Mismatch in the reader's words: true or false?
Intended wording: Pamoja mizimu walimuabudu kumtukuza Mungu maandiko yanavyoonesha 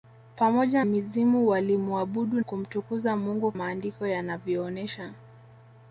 false